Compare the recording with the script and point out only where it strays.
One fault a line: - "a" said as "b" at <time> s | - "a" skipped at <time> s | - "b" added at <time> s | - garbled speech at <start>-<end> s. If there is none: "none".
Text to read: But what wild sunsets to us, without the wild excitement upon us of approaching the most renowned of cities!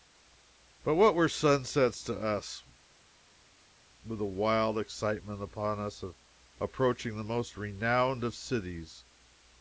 - "wild" said as "were" at 1.1 s
- "without" said as "with" at 4.0 s